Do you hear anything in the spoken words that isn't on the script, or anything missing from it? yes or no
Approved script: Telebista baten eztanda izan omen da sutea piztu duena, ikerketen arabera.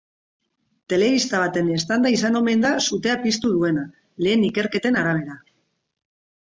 yes